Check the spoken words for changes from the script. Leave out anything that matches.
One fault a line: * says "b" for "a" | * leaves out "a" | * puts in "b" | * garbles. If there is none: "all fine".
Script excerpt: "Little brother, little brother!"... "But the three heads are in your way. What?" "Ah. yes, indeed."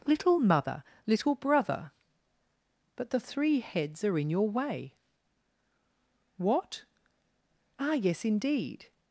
* says "mother" for "brother"